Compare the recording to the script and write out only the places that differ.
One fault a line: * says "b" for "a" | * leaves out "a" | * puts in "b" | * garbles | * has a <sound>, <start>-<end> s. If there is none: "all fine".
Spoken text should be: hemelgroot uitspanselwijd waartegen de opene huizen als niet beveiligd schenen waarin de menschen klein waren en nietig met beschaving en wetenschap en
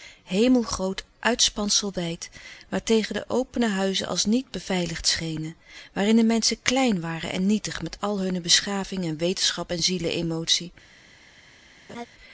* puts in "al hunne"
* has a laugh, 11.9-12.1 s